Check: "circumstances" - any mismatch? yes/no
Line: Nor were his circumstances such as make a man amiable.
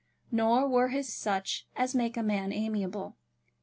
yes